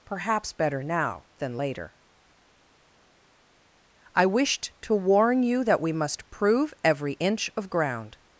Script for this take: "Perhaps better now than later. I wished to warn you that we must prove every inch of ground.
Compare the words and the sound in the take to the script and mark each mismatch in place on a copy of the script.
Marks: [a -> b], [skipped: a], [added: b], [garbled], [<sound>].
"Perhaps better now than later. I wished to warn you that we must prove every inch of ground.